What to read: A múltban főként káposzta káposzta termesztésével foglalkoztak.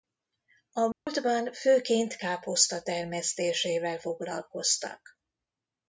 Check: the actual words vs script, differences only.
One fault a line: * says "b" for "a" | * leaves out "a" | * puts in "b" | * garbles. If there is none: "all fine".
* leaves out "káposzta"